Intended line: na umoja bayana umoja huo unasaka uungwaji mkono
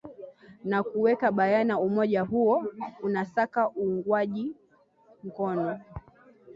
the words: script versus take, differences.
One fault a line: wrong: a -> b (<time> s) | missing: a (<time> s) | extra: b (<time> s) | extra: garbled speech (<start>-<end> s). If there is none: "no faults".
wrong: umoja -> kuweka (0.8 s)